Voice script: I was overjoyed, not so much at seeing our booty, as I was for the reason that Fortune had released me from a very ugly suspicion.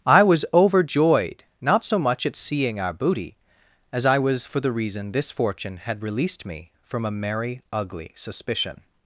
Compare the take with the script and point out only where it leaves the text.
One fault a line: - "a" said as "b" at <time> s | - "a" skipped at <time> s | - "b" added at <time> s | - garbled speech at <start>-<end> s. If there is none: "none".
- "that" said as "this" at 5.1 s
- "very" said as "merry" at 7.1 s